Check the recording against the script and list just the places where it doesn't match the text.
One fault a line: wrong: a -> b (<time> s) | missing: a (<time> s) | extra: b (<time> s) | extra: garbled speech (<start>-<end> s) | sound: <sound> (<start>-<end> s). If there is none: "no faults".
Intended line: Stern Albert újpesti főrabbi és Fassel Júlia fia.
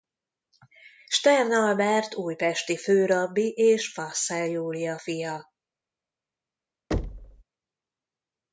sound: thud (6.9-7.4 s)